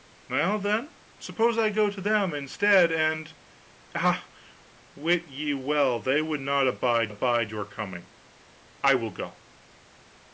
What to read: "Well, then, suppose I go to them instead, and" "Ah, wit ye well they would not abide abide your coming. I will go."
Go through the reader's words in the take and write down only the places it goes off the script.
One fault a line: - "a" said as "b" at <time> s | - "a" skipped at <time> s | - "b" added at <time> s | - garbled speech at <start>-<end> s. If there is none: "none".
none